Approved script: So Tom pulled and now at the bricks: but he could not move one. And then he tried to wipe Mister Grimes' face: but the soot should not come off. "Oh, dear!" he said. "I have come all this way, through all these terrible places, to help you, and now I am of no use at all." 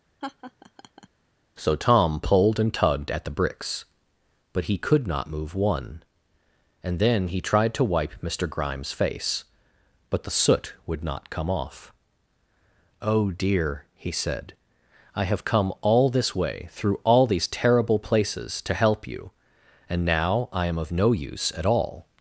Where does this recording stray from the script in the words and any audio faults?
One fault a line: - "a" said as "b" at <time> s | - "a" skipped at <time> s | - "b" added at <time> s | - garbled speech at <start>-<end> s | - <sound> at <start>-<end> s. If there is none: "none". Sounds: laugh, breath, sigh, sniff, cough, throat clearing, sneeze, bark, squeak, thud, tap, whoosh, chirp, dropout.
- laugh at 0.2-1.1 s
- "now" said as "tugged" at 2.7 s
- "should" said as "would" at 10.8 s